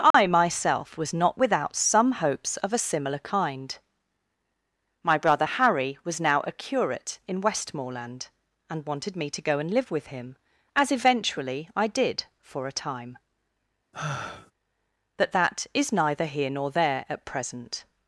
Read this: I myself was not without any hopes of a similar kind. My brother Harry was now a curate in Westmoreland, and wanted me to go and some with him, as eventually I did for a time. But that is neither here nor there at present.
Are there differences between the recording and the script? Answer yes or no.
yes